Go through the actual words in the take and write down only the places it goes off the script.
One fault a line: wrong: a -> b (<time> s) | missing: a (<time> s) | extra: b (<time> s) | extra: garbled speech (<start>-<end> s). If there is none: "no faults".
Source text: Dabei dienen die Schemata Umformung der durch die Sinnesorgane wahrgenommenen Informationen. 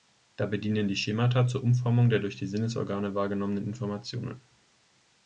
extra: zur (1.5 s)